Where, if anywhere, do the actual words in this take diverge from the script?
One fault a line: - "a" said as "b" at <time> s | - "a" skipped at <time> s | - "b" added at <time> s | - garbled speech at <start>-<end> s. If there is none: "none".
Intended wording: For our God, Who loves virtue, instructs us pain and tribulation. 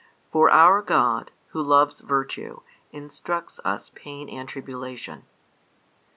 none